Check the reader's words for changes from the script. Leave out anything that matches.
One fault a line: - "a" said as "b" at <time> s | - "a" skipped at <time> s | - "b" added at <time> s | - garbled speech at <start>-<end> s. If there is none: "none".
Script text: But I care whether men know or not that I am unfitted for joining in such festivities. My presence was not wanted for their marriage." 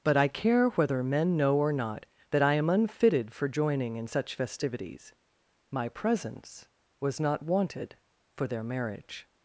none